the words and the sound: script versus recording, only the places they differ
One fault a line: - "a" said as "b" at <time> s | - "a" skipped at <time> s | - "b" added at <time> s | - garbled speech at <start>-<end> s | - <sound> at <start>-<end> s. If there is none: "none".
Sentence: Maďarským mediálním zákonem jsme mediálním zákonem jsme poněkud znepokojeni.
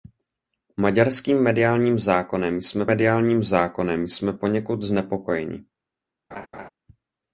- laugh at 6.3-6.7 s